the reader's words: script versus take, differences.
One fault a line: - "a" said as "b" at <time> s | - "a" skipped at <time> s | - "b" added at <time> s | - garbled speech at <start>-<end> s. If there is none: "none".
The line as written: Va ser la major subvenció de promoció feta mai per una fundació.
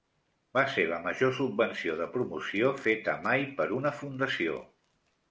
none